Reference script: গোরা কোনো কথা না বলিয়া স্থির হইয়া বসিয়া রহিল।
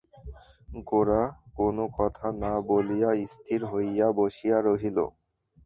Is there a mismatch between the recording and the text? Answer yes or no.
no